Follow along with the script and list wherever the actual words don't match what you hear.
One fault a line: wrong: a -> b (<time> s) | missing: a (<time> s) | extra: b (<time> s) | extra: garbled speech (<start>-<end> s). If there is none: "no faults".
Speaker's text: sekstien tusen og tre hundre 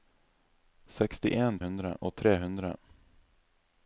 wrong: tusen -> hundre (1.6 s)